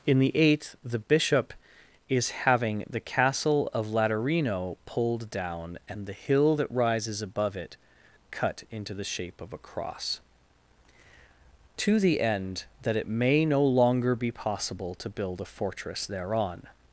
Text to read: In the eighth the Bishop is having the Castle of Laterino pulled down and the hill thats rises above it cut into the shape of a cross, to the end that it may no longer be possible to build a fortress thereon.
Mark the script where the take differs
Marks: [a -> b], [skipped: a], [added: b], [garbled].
In the eighth the Bishop is having the Castle of Laterino pulled down and the hill [thats -> that] rises above it cut into the shape of a cross, to the end that it may no longer be possible to build a fortress thereon.